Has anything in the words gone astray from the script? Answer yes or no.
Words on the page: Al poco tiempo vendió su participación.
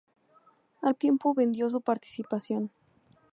yes